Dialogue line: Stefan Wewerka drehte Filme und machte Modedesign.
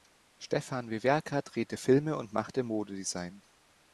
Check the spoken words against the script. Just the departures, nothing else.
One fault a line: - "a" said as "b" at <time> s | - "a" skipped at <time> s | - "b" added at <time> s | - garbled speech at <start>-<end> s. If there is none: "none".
none